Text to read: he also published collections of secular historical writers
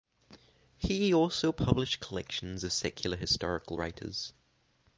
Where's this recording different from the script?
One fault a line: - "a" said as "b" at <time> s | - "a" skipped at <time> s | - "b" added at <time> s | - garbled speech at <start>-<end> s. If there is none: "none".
none